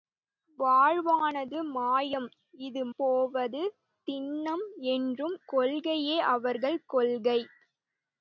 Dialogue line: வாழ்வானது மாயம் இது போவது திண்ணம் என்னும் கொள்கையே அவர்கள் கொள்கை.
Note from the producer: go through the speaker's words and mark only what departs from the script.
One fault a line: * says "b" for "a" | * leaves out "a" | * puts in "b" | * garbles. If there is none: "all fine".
all fine